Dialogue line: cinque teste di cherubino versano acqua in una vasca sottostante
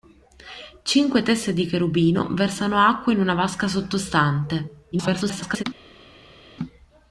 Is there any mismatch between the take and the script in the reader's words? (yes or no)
yes